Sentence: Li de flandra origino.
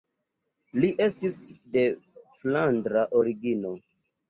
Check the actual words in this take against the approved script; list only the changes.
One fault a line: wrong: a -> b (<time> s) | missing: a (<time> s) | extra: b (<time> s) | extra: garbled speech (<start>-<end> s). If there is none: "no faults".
extra: estis (1.1 s)